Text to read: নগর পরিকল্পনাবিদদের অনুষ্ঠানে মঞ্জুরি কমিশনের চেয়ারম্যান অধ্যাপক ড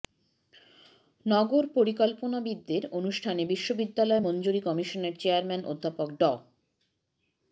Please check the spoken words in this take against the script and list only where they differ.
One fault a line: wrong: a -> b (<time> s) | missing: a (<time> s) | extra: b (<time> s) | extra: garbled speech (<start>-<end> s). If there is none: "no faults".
extra: বিশ্ববিদ্যালয় (3.4 s)